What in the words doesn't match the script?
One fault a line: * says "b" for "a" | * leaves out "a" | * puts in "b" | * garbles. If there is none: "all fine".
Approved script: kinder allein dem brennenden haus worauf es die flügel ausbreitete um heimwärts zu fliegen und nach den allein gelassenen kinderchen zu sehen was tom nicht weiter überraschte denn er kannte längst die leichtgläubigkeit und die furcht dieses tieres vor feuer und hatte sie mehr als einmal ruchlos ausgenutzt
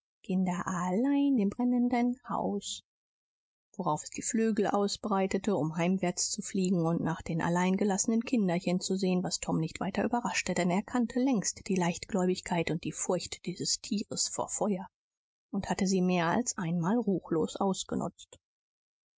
all fine